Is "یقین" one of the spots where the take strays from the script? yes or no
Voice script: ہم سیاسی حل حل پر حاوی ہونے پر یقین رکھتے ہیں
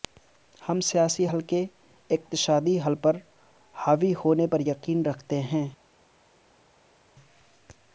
no